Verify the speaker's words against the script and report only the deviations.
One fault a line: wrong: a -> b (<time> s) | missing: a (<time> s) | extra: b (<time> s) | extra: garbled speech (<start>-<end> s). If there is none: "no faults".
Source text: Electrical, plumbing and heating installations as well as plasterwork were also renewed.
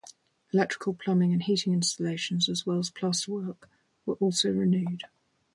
no faults